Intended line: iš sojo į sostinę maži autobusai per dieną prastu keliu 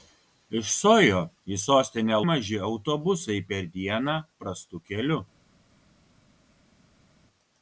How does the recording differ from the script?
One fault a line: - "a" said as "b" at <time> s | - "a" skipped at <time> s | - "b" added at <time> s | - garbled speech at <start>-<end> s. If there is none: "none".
none